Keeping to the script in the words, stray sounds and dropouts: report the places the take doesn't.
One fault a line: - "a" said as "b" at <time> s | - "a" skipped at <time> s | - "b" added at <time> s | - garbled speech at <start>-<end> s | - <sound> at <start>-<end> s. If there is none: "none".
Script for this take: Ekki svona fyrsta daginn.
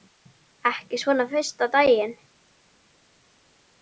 none